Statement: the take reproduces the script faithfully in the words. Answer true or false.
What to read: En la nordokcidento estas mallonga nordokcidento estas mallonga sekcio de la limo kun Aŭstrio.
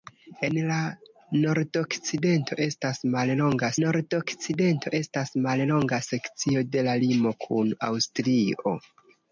true